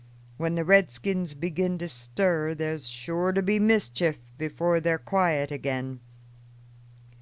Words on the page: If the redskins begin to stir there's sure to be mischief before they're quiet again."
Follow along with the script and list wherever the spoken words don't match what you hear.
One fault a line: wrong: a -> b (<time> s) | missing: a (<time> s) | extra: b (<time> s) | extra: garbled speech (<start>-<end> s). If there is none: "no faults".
wrong: If -> When (0.4 s)